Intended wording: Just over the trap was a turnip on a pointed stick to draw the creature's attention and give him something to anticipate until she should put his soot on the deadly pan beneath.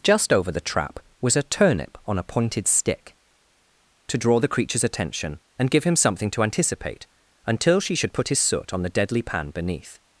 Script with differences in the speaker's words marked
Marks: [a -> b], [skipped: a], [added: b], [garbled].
Just over the trap was a turnip on a pointed stick to draw the creature's attention and give him something to anticipate until she should put his soot on the deadly pan beneath.